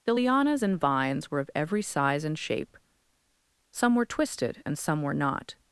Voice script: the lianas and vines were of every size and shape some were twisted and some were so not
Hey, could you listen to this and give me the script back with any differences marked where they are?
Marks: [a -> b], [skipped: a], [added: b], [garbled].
the lianas and vines were of every size and shape some were twisted and some were [skipped: so] not